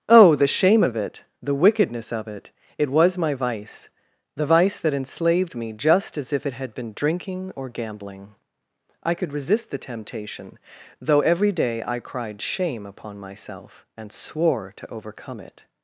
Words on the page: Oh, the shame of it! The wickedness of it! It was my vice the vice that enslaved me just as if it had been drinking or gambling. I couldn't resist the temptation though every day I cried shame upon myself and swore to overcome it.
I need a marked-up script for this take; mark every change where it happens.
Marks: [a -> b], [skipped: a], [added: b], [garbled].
Oh, the shame of it! The wickedness of it! It was my vice the vice that enslaved me just as if it had been drinking or gambling. I [couldn't -> could] resist the temptation though every day I cried shame upon myself and swore to overcome it.